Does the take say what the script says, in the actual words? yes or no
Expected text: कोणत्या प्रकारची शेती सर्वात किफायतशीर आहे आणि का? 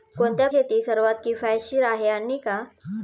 no